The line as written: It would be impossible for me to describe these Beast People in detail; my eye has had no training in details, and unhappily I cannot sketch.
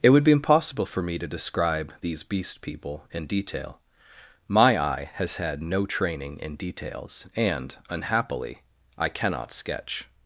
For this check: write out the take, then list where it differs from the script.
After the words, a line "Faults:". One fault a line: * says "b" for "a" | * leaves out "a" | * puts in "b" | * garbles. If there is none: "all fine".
It would be impossible for me to describe these Beast People in detail; my eye has had no training in details, and unhappily I cannot sketch.
Faults:
all fine